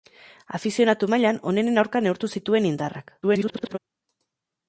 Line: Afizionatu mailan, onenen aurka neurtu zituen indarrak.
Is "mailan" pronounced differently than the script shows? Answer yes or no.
no